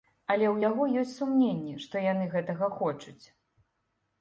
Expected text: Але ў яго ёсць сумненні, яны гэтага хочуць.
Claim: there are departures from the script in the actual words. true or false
true